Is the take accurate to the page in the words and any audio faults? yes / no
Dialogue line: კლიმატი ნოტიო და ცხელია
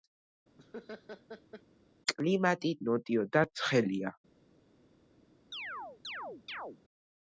no